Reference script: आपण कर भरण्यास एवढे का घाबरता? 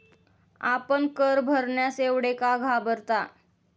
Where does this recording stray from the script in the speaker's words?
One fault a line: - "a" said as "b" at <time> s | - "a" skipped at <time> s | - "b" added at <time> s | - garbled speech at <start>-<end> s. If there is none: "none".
none